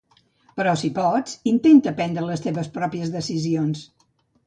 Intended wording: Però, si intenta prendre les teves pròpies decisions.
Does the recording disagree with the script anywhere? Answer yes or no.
yes